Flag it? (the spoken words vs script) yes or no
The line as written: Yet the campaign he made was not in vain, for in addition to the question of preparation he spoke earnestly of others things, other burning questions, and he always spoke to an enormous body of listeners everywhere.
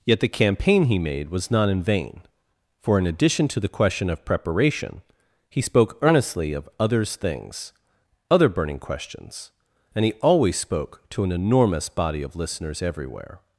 no